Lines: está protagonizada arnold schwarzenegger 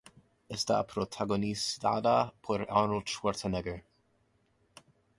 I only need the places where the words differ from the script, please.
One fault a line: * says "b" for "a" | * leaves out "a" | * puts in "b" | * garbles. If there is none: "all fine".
* puts in "por"